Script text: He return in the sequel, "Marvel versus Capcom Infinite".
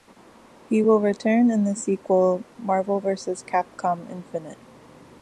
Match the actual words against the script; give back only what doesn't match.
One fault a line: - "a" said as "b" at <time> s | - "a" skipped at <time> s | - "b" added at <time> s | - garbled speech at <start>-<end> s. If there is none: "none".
- "will" added at 0.8 s